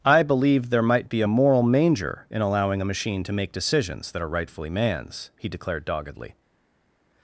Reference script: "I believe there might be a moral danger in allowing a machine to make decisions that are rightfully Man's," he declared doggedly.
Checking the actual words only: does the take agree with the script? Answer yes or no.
no